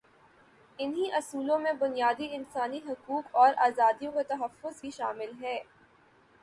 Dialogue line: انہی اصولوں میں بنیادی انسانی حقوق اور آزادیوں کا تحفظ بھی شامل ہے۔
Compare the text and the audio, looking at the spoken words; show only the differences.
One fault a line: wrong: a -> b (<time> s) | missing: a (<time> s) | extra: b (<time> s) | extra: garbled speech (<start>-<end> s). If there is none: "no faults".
no faults